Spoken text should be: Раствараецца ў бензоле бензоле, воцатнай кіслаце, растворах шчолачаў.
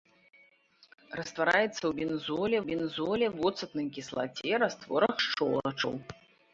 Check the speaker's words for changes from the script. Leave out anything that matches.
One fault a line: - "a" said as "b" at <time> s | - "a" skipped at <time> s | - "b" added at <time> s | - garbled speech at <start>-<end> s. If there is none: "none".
none